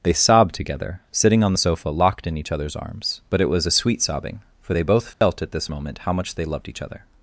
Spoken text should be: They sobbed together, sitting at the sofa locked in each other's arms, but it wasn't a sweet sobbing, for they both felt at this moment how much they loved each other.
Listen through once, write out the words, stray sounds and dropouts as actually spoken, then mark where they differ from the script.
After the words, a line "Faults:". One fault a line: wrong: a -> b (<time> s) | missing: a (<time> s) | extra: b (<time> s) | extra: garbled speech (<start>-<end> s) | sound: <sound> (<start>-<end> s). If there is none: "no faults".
They sobbed together, sitting on the sofa locked in each other's arms, but it was a sweet sobbing, for they both felt at this moment how much they loved each other.
Faults:
wrong: at -> on (1.4 s)
wrong: wasn't -> was (3.5 s)
sound: dropout (5.1-5.2 s)